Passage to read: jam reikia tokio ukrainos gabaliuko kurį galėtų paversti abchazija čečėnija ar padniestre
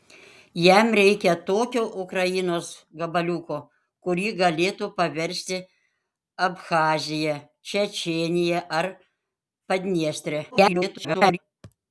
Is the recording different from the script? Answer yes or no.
yes